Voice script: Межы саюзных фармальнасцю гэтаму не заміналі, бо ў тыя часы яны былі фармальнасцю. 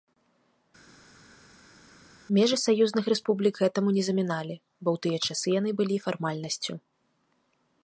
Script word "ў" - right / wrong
right